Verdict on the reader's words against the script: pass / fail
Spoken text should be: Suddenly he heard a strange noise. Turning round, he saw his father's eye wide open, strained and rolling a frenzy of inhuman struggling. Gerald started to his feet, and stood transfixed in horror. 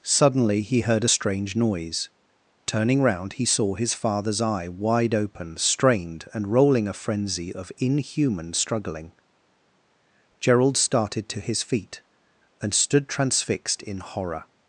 pass